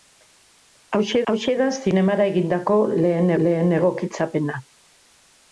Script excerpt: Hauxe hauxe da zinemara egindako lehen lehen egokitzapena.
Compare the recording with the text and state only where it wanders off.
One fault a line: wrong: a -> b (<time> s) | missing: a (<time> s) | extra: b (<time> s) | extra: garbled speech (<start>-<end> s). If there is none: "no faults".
no faults